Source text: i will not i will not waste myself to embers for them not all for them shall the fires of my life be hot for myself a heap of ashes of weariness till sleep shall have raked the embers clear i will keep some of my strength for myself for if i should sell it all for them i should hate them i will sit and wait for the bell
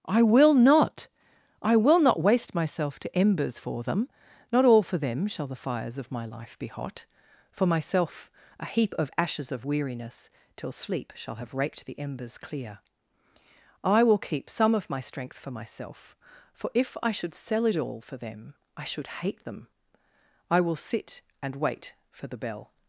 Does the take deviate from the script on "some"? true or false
false